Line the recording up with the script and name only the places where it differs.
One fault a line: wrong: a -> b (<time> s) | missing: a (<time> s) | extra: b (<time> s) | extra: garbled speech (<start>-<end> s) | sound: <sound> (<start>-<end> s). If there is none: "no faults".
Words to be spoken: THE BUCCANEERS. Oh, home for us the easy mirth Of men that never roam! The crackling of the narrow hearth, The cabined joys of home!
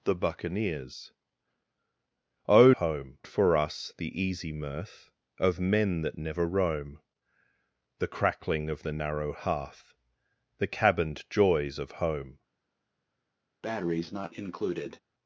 sound: breath (13.6-15.0 s)